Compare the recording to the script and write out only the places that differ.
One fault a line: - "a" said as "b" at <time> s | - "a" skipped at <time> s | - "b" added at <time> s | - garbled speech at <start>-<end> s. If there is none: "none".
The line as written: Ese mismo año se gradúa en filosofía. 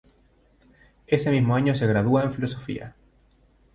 none